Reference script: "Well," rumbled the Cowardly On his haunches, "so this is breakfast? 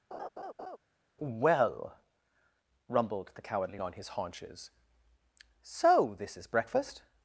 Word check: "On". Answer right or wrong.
right